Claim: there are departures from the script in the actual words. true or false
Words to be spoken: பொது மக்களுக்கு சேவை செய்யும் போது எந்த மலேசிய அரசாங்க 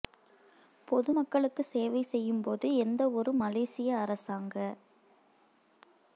true